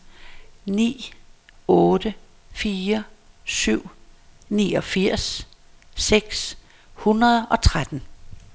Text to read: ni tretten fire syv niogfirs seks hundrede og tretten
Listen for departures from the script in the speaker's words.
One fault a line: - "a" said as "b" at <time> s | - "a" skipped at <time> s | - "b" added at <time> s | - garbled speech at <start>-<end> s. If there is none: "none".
- "tretten" said as "otte" at 1.7 s